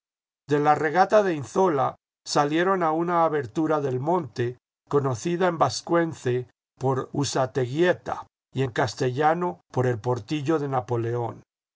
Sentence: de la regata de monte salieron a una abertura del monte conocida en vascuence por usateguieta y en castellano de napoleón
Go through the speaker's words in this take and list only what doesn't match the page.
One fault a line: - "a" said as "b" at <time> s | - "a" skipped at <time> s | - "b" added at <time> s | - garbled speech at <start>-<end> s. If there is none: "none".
- "monte" said as "inzoia" at 1.4 s
- "por el portillo" added at 9.7 s